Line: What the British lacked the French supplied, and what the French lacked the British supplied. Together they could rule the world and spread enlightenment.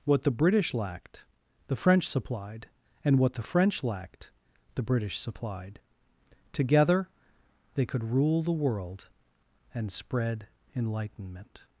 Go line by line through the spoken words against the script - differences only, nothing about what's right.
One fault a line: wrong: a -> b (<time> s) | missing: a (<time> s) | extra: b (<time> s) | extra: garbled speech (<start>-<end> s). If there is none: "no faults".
no faults